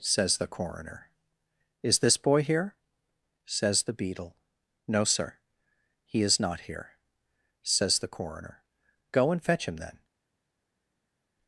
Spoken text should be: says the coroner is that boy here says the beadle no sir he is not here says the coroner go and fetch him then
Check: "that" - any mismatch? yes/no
yes